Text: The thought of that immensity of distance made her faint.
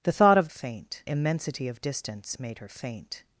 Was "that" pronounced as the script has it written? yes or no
no